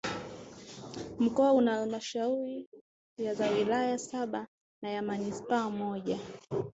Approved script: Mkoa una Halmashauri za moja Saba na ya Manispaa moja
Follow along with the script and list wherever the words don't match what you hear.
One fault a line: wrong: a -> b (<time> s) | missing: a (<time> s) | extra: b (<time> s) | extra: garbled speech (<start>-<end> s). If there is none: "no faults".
wrong: moja -> wilaya (3.5 s)